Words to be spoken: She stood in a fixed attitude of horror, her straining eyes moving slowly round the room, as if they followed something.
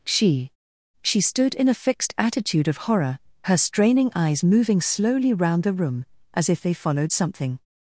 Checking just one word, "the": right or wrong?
right